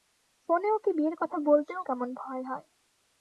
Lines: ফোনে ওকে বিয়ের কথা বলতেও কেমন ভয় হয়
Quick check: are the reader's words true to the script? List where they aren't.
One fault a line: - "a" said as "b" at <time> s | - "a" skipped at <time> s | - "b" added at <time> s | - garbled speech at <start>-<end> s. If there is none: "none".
none